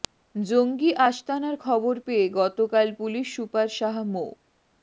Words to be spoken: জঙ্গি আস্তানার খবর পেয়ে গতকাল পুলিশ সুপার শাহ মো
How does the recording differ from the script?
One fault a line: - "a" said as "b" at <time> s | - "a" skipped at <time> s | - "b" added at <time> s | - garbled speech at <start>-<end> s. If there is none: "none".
none